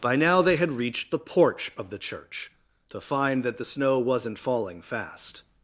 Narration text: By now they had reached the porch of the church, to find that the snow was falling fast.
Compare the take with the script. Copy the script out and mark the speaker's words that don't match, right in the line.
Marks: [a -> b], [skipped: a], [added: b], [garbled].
By now they had reached the porch of the church, to find that the snow [was -> wasn't] falling fast.